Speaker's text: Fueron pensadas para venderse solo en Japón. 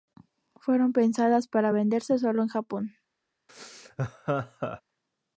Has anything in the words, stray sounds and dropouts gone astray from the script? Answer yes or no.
yes